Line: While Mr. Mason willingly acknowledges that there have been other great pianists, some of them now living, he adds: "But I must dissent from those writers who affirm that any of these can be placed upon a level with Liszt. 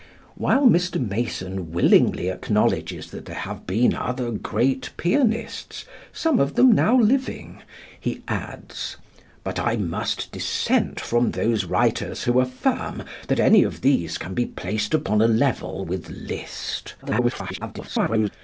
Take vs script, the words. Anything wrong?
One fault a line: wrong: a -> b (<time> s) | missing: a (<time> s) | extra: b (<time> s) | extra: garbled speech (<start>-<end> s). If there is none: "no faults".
extra: garbled speech (17.0-18.3 s)